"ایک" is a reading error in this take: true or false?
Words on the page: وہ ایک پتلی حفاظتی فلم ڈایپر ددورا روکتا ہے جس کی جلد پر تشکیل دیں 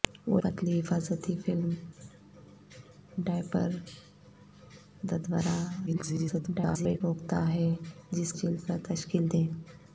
true